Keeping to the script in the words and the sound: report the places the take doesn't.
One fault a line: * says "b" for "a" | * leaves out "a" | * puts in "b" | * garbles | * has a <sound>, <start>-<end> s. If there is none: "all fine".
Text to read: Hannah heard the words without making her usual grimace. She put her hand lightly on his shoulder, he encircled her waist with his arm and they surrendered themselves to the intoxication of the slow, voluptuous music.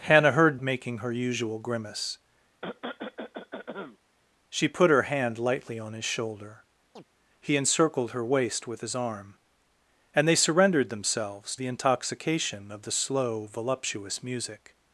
* leaves out "the words without"
* has a cough, 2.6-4.0 s
* has a chirp, 7.0-7.0 s
* leaves out "to"